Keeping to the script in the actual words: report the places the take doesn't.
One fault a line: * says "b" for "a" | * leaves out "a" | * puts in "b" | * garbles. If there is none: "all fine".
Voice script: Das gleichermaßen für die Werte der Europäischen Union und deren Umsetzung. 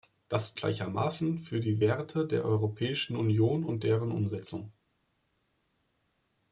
all fine